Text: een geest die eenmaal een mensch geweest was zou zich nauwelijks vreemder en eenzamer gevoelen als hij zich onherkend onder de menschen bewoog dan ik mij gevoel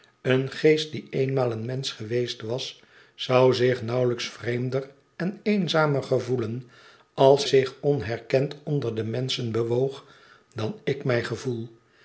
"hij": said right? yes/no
no